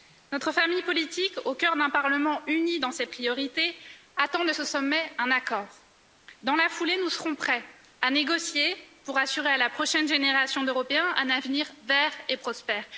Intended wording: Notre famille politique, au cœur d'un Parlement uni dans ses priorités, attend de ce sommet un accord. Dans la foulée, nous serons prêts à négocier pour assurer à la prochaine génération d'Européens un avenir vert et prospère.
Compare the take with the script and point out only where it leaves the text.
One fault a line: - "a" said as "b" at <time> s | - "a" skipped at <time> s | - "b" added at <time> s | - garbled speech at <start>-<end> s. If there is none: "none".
none